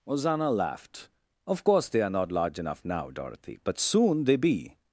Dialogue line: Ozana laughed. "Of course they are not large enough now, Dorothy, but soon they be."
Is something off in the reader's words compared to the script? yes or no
no